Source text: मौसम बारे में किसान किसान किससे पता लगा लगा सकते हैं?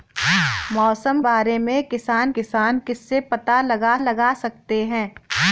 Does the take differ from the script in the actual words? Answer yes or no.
no